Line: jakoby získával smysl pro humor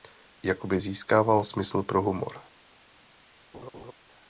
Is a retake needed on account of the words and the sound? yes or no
yes